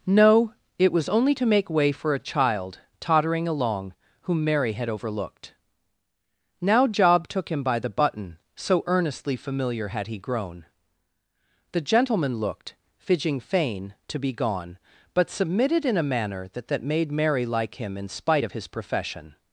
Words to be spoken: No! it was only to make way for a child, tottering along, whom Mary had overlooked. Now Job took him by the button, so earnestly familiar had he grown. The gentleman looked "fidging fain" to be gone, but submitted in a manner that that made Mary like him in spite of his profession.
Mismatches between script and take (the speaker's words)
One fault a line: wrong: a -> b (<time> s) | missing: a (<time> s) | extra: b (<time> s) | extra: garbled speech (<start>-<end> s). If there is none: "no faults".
no faults